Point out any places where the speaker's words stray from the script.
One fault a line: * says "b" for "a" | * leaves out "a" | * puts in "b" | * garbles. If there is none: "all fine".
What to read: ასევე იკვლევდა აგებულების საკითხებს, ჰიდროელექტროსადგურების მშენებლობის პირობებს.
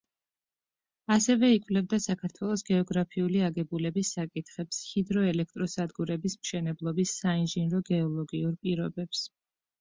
* puts in "საქართველოს გეოგრაფიული"
* puts in "საინჟინრო გეოლოგიურ"